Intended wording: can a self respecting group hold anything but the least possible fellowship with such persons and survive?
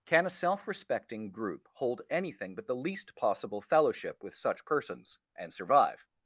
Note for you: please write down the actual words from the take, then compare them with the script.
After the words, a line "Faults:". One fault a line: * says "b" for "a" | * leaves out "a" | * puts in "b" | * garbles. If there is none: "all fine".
can a self respecting group hold anything but the least possible fellowship with such persons and survive?
Faults:
all fine